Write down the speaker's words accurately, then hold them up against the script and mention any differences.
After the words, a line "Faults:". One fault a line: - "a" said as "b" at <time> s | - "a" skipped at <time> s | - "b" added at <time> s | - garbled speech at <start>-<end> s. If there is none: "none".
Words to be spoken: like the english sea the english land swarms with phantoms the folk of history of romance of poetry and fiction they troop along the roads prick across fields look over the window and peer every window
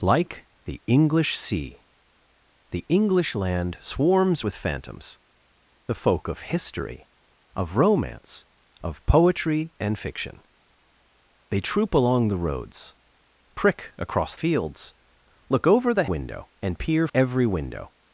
like the english sea the english land swarms with phantoms the folk of history of romance of poetry and fiction they troop along the roads prick across fields look over the window and peer every window
Faults:
none